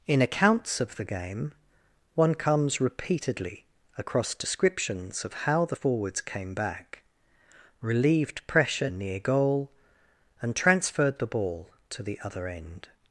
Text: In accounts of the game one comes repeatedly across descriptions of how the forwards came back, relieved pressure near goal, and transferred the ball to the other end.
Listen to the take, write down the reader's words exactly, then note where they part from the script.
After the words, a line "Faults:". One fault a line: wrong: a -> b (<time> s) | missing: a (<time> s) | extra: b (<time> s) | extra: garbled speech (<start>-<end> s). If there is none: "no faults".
In accounts of the game one comes repeatedly across descriptions of how the forwards came back, relieved pressure near goal, and transferred the ball to the other end.
Faults:
no faults